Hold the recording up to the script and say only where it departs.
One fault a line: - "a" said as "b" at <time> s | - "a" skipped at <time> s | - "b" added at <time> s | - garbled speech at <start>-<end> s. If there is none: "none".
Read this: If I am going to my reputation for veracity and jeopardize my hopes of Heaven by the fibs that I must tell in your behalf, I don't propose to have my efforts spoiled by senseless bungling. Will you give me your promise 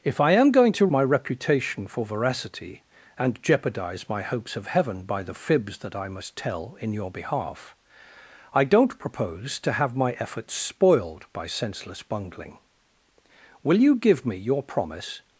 none